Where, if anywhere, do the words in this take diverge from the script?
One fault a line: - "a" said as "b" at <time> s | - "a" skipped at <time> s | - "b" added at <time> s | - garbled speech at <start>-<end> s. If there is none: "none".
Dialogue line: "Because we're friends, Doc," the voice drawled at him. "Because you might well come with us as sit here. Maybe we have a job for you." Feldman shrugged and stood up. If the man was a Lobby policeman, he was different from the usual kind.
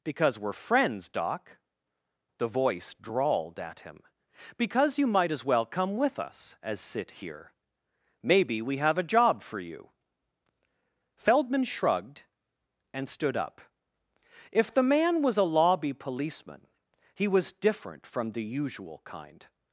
- "as" added at 5.3 s